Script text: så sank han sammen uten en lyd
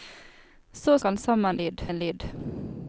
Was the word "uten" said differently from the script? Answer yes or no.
yes